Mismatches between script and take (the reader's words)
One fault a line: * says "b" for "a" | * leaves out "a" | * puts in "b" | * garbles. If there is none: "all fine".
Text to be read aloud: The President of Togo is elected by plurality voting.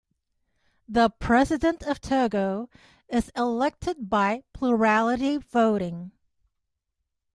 all fine